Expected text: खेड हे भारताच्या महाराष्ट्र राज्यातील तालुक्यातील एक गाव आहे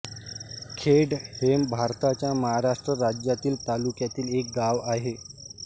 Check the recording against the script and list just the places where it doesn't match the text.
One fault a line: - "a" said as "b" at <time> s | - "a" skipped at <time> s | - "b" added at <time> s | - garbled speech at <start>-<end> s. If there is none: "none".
none